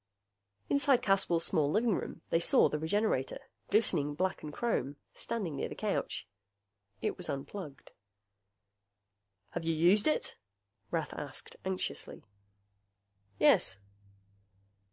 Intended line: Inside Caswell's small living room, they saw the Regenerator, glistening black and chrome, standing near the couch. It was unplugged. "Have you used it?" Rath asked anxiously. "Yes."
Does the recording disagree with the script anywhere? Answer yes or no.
no